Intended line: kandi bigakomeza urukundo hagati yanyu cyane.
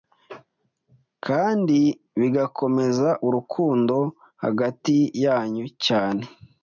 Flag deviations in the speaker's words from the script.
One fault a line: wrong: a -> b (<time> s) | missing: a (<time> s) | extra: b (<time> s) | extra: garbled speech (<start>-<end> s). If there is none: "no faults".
no faults